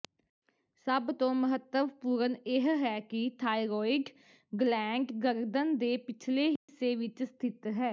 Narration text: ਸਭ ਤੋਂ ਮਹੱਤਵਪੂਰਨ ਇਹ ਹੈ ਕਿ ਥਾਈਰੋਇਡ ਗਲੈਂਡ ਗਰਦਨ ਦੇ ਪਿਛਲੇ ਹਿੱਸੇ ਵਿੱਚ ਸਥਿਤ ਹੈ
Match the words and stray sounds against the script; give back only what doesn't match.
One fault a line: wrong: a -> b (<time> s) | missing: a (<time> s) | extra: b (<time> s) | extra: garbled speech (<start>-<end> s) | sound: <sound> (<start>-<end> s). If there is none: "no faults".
sound: dropout (6.6-6.7 s)